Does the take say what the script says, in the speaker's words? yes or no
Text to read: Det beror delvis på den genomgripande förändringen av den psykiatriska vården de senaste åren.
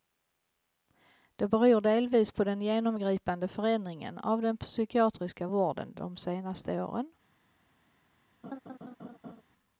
yes